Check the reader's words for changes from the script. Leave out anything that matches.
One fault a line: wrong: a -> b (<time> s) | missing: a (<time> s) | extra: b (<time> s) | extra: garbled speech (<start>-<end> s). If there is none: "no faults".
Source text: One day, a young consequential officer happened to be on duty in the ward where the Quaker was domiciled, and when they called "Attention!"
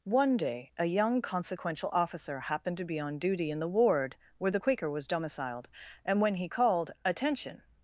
wrong: they -> he (6.3 s)